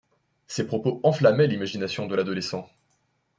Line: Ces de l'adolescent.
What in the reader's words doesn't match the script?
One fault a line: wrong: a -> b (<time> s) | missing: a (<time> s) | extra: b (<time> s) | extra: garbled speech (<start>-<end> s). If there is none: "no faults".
extra: propos enflammaient l'imagination (0.7 s)